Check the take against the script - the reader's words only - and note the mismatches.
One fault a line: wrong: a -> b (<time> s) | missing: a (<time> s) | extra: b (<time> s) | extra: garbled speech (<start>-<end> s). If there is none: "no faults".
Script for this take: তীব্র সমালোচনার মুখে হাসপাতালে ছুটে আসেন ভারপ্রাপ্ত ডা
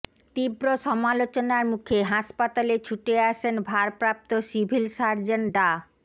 extra: সিভিল সার্জন (4.5 s)